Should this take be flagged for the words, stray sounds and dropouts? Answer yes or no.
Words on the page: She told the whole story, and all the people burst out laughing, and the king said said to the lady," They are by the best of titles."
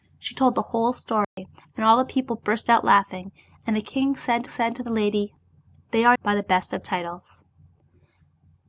yes